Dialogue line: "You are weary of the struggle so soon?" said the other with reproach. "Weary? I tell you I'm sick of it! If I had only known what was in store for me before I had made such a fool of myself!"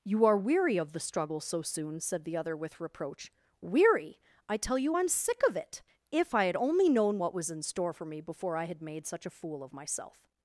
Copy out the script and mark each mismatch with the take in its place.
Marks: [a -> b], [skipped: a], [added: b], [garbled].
"You are weary of the struggle so soon?" said the other with reproach. "Weary? I tell you I'm sick of it! If I had only known what was in store for me before I had made such a fool of myself!"